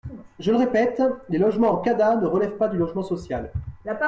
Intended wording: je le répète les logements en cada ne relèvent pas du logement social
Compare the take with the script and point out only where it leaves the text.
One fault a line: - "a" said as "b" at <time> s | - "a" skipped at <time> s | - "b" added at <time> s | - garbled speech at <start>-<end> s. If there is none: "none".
none